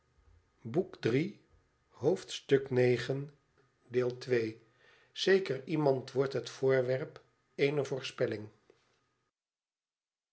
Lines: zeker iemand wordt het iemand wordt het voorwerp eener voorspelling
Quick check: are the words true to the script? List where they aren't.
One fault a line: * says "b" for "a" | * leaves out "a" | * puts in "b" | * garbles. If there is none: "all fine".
* leaves out "iemand wordt het"